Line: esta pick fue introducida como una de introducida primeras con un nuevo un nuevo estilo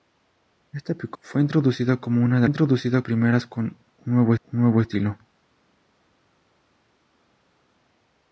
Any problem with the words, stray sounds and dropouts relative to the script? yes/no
no